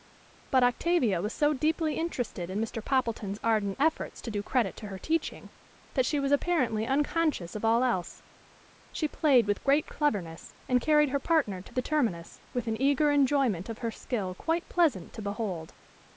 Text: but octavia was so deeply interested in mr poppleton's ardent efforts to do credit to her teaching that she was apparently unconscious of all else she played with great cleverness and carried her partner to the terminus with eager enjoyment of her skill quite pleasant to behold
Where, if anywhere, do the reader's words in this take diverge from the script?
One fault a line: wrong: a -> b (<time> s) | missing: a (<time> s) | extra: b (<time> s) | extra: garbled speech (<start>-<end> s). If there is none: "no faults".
extra: an (12.7 s)